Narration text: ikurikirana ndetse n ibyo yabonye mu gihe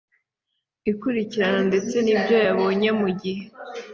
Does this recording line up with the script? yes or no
yes